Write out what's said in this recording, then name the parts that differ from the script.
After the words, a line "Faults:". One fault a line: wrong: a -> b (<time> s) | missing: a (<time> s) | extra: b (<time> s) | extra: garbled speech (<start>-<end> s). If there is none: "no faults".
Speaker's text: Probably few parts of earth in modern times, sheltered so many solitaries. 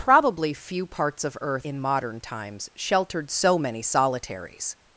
Probably few parts of earth in modern times, sheltered so many solitaries.
Faults:
no faults